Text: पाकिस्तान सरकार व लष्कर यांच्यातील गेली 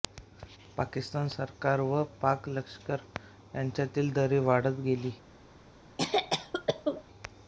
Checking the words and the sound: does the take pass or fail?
fail